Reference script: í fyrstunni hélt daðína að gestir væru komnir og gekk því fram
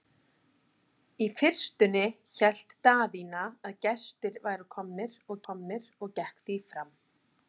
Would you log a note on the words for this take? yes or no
yes